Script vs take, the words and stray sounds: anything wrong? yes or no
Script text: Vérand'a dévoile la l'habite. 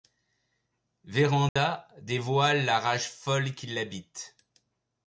yes